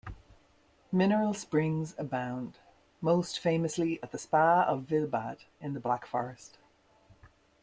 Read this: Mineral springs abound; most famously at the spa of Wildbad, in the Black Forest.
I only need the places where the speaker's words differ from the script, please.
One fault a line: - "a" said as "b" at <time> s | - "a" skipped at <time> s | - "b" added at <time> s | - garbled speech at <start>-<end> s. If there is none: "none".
none